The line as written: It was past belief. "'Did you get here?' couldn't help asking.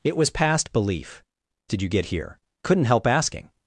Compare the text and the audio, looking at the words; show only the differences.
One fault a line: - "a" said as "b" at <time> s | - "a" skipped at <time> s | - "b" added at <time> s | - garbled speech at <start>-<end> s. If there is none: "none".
none